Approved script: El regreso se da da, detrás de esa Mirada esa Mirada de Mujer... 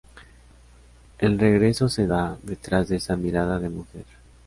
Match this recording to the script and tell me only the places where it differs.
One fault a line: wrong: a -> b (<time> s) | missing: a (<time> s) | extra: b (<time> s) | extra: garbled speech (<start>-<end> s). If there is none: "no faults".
missing: da (2.4 s)
missing: esa Mirada (3.6 s)